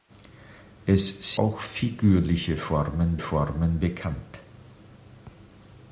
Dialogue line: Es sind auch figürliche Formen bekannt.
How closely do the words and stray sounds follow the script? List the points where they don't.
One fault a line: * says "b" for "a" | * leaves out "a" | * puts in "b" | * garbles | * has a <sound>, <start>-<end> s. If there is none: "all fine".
* leaves out "sind"
* puts in "Formen"